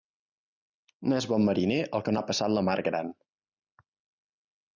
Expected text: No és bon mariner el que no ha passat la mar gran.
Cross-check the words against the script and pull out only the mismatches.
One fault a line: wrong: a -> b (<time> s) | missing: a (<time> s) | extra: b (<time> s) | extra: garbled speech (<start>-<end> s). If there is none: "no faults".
no faults